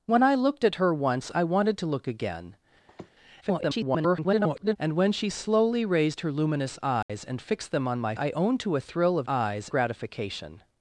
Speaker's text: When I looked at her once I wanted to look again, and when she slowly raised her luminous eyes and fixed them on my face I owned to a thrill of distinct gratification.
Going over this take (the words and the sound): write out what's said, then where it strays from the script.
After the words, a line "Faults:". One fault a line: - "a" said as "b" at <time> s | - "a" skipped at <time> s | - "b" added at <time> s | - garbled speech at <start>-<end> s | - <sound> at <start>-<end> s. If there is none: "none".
When I looked at her once I wanted to look again, [garbled] and when she slowly raised her luminous eyes and fixed them on my I owned to a thrill of eyes gratification.
Faults:
- sniff at 2.9-3.1 s
- garbled speech at 3.4-4.8 s
- dropout at 7.0-7.1 s
- "face" skipped at 8.1 s
- "distinct" said as "eyes" at 9.3 s